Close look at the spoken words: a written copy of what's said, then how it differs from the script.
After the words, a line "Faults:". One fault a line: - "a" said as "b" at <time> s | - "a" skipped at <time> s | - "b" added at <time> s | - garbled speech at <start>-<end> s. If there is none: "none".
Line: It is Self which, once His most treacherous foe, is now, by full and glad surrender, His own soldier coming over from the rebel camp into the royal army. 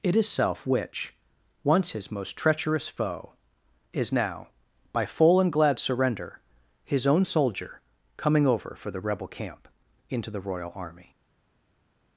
It is Self which, once His most treacherous foe, is now, by full and glad surrender, His own soldier coming over for the rebel camp into the royal army.
Faults:
- "from" said as "for" at 8.8 s